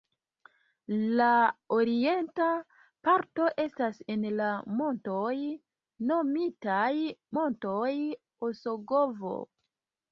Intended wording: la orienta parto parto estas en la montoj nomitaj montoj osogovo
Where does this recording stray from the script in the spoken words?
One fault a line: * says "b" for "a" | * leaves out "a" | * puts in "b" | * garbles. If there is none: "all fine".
* leaves out "parto"